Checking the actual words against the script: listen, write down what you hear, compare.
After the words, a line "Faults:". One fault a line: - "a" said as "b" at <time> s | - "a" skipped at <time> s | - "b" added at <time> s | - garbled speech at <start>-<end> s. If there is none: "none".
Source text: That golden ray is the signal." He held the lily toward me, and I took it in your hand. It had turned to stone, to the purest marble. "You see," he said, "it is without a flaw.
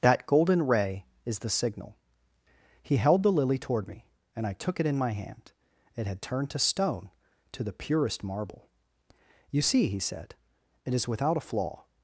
That golden ray is the signal." He held the lily toward me, and I took it in my hand. It had turned to stone, to the purest marble. "You see," he said, "it is without a flaw.
Faults:
- "your" said as "my" at 5.0 s